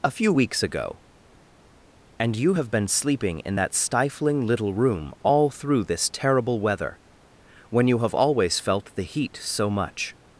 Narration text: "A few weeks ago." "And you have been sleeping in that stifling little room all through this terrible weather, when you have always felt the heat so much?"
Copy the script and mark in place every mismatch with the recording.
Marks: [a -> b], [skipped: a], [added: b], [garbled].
"A few weeks ago." "And you have been sleeping in that stifling little room all through this terrible weather, when you have always felt the heat so much?"